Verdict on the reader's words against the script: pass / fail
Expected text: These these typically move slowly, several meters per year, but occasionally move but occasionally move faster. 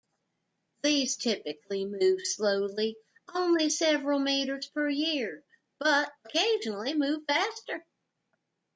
fail